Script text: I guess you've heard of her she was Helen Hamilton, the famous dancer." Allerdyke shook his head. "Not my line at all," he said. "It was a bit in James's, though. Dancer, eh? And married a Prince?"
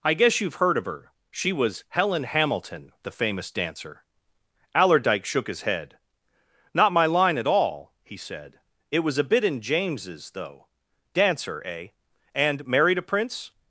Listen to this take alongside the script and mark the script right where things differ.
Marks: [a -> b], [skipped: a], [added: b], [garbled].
I guess you've heard of her she was Helen Hamilton, the famous dancer." Allerdyke shook his head. "Not my line at all," he said. "It was a bit in James's, though. Dancer, eh? And married a Prince?"